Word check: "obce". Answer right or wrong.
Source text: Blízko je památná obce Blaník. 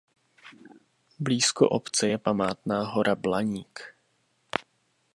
wrong